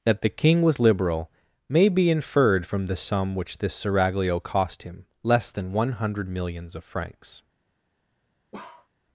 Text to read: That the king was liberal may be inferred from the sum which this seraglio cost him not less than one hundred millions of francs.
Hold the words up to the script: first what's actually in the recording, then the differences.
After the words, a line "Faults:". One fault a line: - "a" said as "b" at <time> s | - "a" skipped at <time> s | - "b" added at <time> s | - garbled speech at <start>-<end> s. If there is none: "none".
That the king was liberal may be inferred from the sum which this seraglio cost him less than one hundred millions of francs.
Faults:
- "not" skipped at 5.1 s